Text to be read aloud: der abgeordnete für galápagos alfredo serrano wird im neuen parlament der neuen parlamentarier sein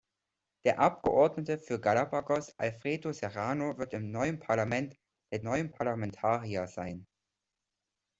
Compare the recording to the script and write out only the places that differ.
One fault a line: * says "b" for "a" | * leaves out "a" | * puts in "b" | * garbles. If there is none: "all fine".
all fine